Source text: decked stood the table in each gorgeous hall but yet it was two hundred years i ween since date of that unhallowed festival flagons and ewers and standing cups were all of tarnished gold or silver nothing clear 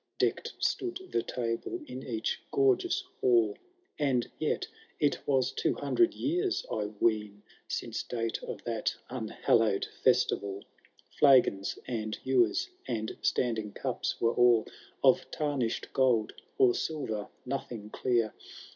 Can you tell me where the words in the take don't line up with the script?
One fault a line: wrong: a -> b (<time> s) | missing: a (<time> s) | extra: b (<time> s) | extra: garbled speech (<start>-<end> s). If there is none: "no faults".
wrong: but -> and (4.0 s)